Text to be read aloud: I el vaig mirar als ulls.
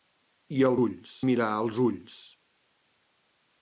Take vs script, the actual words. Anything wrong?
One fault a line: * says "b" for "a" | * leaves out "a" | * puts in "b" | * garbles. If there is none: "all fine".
* says "ulls" for "vaig"